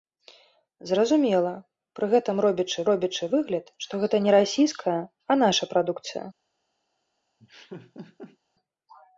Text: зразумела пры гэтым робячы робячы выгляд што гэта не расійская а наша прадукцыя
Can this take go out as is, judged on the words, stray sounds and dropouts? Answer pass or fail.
fail